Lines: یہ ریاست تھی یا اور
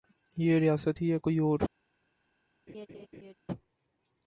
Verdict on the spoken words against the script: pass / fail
fail